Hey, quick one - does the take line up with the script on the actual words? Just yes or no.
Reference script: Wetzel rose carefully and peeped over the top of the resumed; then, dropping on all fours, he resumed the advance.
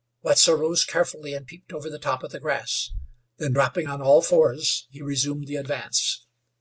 no